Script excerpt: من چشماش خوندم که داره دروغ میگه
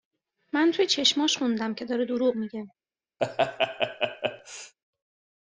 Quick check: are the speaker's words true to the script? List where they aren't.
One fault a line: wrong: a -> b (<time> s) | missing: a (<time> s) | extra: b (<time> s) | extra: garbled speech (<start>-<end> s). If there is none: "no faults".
extra: توی (0.7 s)